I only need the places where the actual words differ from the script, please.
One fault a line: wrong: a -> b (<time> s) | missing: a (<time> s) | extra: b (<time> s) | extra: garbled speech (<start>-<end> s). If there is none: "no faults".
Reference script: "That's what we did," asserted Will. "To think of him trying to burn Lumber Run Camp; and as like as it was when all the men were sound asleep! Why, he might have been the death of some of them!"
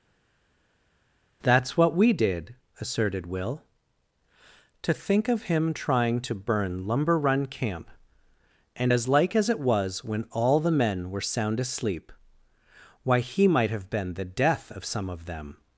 no faults